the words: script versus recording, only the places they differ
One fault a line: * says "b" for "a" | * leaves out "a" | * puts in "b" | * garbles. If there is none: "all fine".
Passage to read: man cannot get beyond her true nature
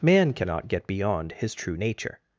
* says "his" for "her"